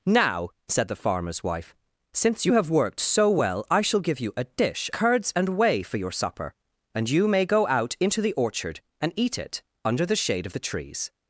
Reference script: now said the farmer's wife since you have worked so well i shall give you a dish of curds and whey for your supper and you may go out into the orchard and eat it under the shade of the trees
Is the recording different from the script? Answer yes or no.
yes